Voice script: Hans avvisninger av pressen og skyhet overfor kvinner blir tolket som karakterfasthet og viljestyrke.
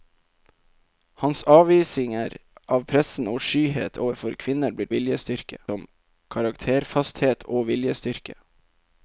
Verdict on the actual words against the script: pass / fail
fail